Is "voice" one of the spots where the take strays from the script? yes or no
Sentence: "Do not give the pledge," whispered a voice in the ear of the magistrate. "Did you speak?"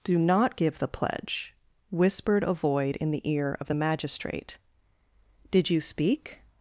yes